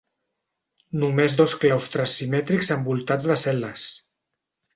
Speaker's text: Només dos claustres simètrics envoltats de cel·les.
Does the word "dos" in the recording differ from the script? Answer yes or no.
no